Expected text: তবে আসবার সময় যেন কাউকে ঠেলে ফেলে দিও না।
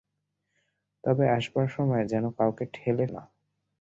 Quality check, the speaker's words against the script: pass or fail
fail